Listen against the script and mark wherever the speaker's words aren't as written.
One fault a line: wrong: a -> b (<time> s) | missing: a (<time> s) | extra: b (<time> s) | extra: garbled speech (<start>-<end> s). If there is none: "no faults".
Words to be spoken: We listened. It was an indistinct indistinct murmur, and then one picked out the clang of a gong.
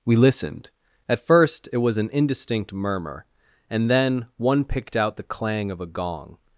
extra: At first (1.1 s)
missing: indistinct (2.7 s)